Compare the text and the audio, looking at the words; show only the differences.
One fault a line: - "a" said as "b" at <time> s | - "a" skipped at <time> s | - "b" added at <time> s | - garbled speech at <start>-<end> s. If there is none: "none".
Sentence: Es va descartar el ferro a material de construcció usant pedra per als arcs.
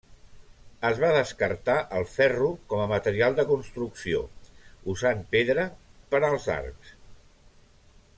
- "com" added at 2.7 s